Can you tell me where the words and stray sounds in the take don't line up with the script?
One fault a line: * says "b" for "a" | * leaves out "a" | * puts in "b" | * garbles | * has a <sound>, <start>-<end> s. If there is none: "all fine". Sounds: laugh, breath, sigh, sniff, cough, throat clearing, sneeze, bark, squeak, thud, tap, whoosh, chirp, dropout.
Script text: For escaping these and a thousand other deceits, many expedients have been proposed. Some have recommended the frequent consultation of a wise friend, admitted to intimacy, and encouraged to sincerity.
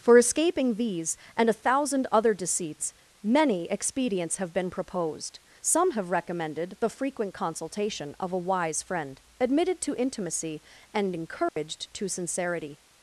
* has a dropout, 11.5-11.6 s